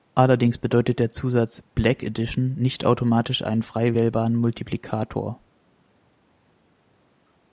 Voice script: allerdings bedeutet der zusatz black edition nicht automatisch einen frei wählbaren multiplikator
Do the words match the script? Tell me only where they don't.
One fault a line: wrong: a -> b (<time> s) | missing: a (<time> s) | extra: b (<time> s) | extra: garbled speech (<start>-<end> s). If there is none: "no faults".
no faults